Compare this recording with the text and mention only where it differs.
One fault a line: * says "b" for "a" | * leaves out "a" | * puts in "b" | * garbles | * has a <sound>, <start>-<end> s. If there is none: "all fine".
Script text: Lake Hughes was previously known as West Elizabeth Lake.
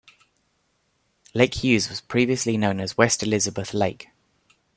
all fine